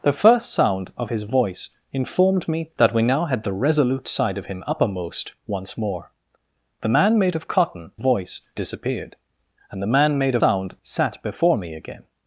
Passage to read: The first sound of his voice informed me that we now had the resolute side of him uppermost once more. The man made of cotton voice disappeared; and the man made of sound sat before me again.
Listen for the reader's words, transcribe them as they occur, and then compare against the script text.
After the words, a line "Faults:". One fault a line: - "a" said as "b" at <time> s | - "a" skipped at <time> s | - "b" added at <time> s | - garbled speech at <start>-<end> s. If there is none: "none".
The first sound of his voice informed me that we now had the resolute side of him uppermost once more. The man made of cotton voice disappeared; and the man made of sound sat before me again.
Faults:
none